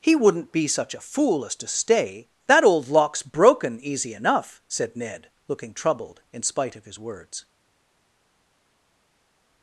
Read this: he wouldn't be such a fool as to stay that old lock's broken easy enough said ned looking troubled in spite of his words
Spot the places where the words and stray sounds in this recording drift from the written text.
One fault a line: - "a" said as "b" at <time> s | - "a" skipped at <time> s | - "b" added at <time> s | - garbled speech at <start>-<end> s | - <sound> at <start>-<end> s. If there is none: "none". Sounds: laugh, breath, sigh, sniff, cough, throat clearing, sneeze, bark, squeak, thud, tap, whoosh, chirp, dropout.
none